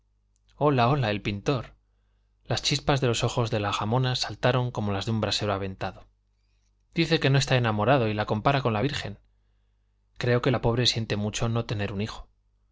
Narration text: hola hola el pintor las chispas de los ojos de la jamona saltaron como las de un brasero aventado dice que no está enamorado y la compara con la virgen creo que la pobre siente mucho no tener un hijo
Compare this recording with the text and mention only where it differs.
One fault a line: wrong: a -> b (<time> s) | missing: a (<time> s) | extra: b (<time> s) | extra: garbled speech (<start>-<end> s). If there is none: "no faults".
no faults